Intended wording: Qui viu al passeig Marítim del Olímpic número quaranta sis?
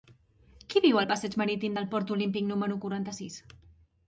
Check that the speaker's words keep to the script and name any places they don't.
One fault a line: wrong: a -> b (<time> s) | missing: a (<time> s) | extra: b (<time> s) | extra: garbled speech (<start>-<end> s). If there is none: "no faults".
extra: Port (1.9 s)